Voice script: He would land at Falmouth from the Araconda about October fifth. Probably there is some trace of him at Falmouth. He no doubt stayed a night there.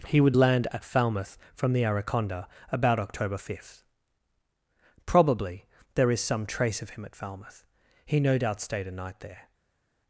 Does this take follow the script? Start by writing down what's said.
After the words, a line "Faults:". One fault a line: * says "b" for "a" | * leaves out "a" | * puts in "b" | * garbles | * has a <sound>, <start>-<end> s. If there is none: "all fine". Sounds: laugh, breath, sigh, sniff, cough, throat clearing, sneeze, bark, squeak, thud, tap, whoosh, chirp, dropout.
He would land at Falmouth from the Araconda about October fifth. Probably there is some trace of him at Falmouth. He no doubt stayed a night there.
Faults:
all fine